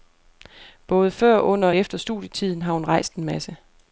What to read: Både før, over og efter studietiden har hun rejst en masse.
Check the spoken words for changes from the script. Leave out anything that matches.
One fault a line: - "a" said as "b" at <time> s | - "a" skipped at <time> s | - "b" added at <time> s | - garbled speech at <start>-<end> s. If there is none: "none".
- "over" said as "under" at 1.4 s